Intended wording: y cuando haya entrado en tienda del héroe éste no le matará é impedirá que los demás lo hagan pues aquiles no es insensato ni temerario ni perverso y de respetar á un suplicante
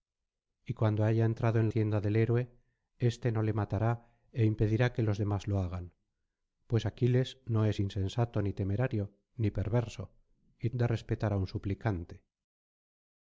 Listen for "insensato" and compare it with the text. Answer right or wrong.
right